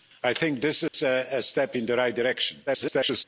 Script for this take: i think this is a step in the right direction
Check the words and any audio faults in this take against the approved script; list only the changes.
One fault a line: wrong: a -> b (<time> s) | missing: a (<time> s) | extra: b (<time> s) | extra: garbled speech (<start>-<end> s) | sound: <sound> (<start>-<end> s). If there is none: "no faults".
sound: dropout (0.9-0.9 s)
extra: garbled speech (2.7-3.2 s)